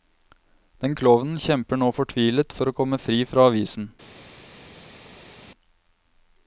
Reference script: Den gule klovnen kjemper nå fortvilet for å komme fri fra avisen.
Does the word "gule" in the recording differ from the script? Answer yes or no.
yes